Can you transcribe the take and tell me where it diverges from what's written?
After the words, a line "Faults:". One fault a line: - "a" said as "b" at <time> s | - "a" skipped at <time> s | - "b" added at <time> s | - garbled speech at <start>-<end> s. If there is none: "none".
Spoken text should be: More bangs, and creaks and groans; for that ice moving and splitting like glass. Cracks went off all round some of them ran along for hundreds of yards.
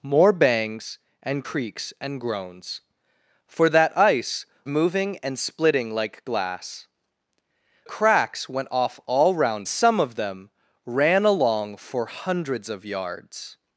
More bangs, and creaks and groans; for that ice moving and splitting like glass. Cracks went off all round some of them ran along for hundreds of yards.
Faults:
none